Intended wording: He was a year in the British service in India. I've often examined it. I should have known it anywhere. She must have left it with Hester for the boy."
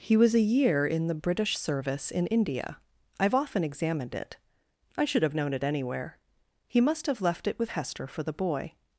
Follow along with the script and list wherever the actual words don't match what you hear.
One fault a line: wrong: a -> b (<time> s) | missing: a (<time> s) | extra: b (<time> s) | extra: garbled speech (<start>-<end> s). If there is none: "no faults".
wrong: She -> He (6.7 s)